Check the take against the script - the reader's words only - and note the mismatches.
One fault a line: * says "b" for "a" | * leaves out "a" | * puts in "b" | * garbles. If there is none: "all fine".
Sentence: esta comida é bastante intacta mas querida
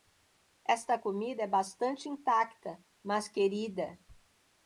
all fine